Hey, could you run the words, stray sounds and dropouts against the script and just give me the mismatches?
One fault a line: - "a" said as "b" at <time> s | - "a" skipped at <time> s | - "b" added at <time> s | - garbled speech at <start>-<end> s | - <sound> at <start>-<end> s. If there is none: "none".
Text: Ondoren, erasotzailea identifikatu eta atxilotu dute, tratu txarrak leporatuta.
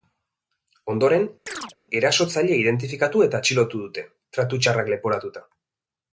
- chirp at 1.5-1.8 s